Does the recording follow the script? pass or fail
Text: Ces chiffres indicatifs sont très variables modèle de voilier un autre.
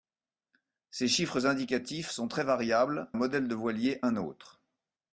pass